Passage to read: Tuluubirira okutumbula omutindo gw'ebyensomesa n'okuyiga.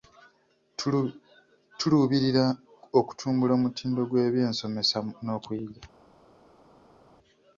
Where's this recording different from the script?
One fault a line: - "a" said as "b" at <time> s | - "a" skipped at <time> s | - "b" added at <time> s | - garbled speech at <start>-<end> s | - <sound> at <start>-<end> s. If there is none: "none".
none